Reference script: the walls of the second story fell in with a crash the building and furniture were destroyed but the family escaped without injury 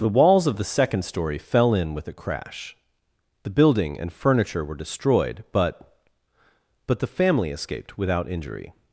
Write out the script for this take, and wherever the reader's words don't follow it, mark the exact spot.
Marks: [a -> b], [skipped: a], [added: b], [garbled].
the walls of the second story fell in with a crash the building and furniture were destroyed but [added: but] the family escaped without injury